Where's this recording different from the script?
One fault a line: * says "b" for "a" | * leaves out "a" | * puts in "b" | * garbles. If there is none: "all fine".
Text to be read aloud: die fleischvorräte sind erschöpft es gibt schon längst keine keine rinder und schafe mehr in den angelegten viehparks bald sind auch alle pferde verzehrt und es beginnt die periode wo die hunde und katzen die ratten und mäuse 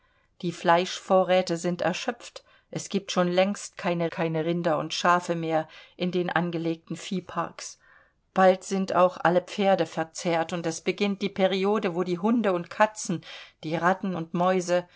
all fine